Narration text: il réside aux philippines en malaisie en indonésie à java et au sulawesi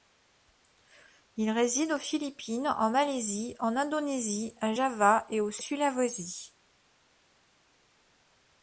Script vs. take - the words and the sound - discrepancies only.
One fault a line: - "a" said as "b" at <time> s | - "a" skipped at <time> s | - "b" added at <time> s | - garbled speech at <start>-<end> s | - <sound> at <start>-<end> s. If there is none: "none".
none